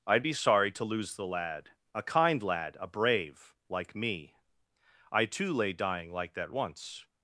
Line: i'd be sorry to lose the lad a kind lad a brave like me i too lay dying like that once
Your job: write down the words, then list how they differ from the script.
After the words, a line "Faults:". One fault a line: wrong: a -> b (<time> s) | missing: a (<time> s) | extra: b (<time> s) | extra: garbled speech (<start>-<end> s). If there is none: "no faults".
i'd be sorry to lose the lad a kind lad a brave like me i too lay dying like that once
Faults:
no faults